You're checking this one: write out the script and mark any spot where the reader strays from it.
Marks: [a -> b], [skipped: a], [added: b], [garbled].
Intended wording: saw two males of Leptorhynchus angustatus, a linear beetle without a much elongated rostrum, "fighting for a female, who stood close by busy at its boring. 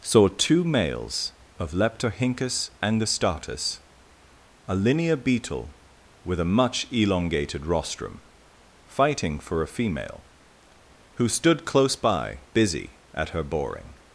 saw two males of Leptorhynchus angustatus, a linear beetle [without -> with] a much elongated rostrum, "fighting for a female, who stood close by busy at [its -> her] boring.